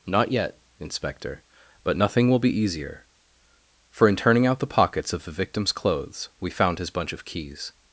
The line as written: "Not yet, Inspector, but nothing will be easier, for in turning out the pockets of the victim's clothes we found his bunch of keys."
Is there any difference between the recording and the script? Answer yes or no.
no